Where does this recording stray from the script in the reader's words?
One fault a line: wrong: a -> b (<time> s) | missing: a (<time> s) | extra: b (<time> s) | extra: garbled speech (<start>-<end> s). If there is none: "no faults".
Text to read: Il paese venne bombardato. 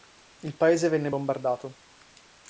no faults